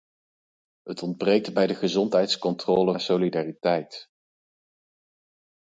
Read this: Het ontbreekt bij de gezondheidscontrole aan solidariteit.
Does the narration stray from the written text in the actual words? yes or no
no